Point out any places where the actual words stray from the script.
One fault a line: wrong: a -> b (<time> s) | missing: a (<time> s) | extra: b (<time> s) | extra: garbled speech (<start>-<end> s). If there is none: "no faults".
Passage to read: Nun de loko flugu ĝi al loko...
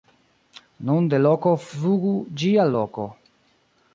no faults